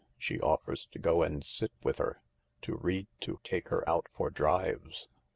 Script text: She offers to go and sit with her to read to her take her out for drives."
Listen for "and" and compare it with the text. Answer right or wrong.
right